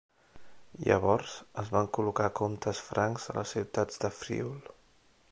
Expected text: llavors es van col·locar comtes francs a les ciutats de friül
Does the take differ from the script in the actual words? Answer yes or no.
no